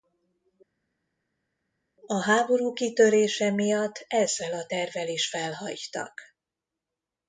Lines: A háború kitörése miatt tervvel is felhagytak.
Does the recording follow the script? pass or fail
fail